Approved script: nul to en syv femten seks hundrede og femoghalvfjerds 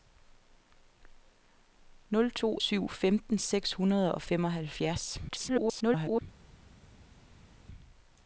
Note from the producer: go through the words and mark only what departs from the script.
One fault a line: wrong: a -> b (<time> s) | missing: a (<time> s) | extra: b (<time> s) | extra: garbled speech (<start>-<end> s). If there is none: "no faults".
missing: en (2.6 s)
extra: garbled speech (5.3-6.2 s)